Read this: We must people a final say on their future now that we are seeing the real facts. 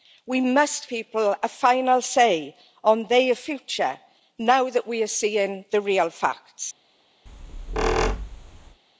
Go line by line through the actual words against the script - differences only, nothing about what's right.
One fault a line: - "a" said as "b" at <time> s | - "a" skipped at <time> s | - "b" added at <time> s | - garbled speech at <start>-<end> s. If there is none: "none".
none